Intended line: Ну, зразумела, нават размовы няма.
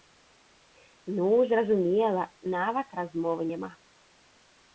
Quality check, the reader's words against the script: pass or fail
pass